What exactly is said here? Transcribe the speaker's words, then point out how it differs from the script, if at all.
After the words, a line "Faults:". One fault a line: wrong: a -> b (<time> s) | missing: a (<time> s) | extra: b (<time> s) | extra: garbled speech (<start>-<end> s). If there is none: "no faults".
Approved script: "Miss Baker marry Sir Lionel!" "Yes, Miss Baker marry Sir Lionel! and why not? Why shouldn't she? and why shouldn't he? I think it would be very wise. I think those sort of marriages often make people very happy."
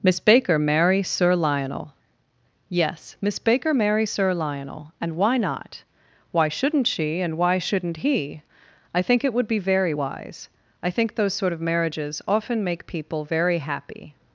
"Miss Baker marry Sir Lionel!" "Yes, Miss Baker marry Sir Lionel! and why not? Why shouldn't she? and why shouldn't he? I think it would be very wise. I think those sort of marriages often make people very happy."
Faults:
no faults